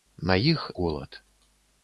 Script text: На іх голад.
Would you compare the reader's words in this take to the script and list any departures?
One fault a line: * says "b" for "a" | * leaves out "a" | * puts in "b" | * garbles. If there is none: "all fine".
all fine